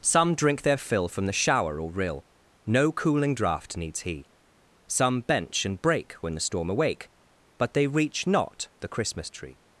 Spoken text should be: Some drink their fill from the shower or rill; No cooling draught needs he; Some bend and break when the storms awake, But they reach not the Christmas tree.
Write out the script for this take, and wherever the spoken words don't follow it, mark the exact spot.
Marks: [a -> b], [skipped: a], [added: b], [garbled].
Some drink their fill from the shower or rill; No cooling draught needs he; Some [bend -> bench] and break when the [storms -> storm] awake, But they reach not the Christmas tree.